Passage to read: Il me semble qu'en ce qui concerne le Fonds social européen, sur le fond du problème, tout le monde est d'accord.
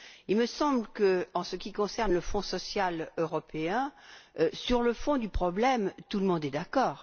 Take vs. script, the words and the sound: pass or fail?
pass